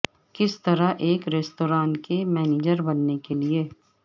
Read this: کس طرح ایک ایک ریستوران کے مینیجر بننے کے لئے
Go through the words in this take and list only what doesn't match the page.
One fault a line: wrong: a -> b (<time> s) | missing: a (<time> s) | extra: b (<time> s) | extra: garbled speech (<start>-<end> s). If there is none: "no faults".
missing: ایک (1.3 s)